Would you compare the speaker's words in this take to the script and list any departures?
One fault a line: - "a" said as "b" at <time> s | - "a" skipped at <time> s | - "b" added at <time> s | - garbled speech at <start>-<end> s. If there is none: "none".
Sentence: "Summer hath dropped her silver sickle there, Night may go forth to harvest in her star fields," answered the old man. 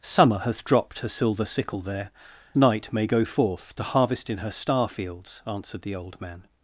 none